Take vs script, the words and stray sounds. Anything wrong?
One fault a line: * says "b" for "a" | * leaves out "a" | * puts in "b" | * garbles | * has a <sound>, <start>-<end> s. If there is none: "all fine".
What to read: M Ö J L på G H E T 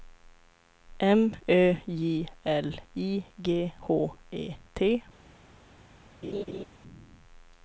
* says "I" for "på"
* has a laugh, 6.2-6.7 s